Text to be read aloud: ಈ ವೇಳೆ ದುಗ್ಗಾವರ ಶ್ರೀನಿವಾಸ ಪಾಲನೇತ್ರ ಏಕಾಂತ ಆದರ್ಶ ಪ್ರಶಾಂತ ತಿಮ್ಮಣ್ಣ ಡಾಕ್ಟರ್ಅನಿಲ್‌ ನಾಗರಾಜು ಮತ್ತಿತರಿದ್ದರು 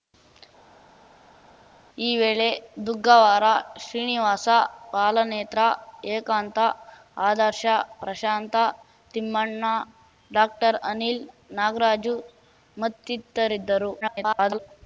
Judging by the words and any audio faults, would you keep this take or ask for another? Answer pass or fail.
fail